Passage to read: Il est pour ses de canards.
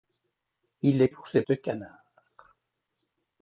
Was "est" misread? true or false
false